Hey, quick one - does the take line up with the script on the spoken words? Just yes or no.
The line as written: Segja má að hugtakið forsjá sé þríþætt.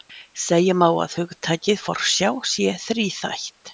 yes